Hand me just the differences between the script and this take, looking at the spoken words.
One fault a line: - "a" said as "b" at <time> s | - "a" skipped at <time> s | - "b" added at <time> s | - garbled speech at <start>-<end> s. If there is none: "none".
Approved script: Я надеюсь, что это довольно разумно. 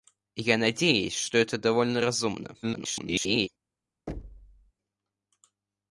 - garbled speech at 2.6-3.5 s